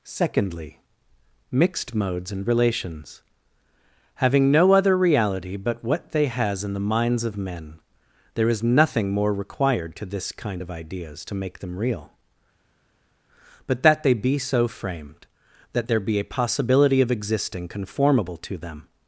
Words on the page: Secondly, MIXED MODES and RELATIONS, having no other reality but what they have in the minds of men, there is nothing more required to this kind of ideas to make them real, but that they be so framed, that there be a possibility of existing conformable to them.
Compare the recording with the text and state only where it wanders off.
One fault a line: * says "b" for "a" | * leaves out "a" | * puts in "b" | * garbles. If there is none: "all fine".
* says "has" for "have"